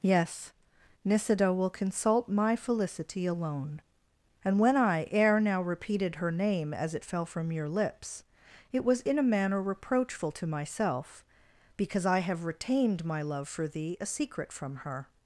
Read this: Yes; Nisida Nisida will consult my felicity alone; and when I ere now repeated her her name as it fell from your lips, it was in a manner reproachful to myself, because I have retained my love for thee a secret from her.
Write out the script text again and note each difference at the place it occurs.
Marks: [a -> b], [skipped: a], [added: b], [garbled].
Yes; Nisida [skipped: Nisida] will consult my felicity alone; and when I ere now repeated her [skipped: her] name as it fell from your lips, it was in a manner reproachful to myself, because I have retained my love for thee a secret from her.